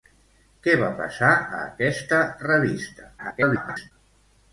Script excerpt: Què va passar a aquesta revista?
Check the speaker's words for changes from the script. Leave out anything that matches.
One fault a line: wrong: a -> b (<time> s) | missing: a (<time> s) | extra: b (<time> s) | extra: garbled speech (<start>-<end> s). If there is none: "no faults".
extra: garbled speech (3.2-3.9 s)